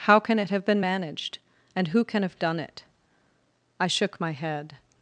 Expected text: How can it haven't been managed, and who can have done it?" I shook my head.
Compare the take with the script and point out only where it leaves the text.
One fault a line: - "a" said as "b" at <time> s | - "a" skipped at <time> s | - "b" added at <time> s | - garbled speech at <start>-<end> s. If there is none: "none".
- "haven't" said as "have" at 0.5 s